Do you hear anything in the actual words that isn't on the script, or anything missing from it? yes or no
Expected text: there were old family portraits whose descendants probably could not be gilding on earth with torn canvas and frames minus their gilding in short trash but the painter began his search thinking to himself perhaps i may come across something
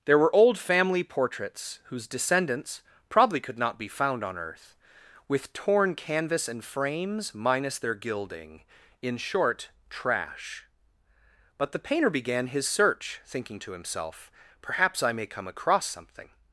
yes